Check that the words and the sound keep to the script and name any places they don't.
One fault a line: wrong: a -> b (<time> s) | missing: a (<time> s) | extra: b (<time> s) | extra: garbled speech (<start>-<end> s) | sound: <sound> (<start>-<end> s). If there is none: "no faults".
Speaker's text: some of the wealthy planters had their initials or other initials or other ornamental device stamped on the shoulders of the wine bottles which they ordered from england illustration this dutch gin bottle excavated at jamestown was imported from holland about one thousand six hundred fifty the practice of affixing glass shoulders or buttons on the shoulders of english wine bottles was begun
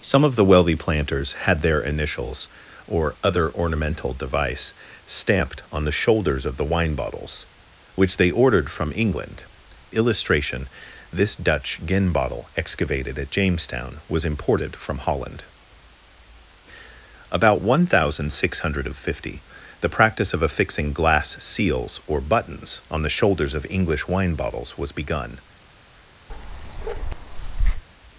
missing: initials or other (3.5 s)
wrong: shoulders -> seals (21.4 s)
sound: bark (26.3-27.8 s)